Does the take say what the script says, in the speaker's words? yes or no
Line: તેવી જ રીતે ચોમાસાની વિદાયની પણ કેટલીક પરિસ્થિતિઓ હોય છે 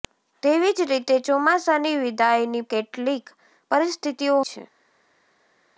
no